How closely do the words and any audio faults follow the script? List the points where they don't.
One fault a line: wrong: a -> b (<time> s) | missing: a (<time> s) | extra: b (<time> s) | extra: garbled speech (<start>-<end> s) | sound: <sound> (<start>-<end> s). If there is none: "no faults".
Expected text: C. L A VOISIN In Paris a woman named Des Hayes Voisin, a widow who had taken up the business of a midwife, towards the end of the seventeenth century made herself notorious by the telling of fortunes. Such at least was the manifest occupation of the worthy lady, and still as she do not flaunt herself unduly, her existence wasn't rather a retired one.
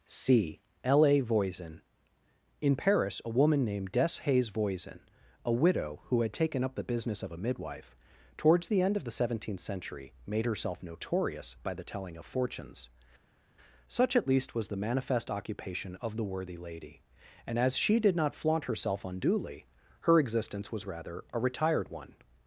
missing: still (17.6 s)
wrong: do -> did (18.0 s)
wrong: wasn't -> was (20.7 s)